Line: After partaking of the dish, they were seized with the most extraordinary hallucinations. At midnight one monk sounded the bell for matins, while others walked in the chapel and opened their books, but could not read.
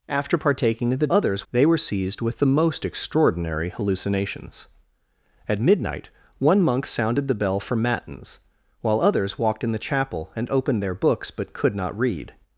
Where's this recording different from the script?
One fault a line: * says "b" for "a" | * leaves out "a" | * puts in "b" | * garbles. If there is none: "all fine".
* says "others" for "dish"